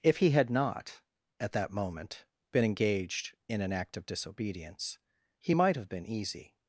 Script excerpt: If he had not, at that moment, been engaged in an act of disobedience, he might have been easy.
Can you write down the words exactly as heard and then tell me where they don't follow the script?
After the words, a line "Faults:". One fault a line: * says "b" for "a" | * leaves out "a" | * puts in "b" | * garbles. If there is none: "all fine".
If he had not, at that moment, been engaged in an act of disobedience, he might have been easy.
Faults:
all fine